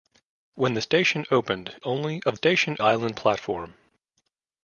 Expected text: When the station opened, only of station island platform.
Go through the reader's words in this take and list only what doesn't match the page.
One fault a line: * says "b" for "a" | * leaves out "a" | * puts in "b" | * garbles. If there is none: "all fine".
all fine